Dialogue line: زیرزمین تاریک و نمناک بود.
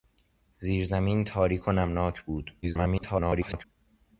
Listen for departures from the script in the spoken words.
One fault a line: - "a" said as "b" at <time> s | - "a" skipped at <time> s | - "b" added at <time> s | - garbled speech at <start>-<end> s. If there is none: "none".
- garbled speech at 2.6-3.6 s